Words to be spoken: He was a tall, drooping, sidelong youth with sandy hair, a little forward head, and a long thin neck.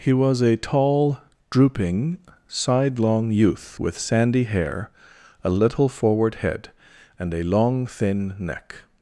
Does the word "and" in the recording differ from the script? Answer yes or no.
no